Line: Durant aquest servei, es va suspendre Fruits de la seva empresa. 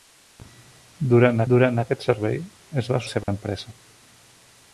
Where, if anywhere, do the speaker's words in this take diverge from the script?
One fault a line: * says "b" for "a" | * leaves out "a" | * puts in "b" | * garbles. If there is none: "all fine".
* puts in "durant"
* leaves out "suspendre Fruits de"